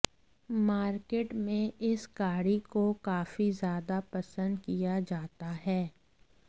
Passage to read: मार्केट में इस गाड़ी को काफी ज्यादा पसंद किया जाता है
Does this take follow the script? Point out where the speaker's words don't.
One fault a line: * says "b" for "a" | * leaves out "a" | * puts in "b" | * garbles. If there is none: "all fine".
all fine